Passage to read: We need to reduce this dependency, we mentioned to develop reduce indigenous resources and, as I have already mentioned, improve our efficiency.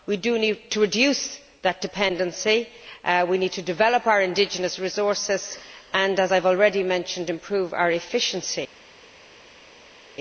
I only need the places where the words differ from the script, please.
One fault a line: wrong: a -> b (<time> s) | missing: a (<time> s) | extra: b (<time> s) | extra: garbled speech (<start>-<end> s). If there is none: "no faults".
wrong: this -> that (1.6 s)
wrong: mentioned -> need (3.4 s)
wrong: reduce -> our (4.1 s)